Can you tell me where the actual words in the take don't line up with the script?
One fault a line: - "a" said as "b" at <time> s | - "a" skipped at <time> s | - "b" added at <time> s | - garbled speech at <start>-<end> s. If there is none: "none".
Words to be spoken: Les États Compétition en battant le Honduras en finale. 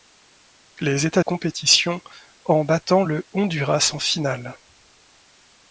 none